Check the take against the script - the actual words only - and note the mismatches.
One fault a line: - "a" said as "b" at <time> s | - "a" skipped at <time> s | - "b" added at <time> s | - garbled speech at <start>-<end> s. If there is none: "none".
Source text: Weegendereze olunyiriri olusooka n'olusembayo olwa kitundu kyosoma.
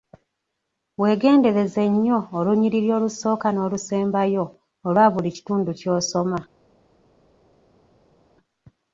- "nnyo" added at 1.9 s
- "buli" added at 5.1 s